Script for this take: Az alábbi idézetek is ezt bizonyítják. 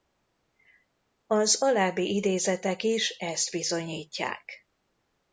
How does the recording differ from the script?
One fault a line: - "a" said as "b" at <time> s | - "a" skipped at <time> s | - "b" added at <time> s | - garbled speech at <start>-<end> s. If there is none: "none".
none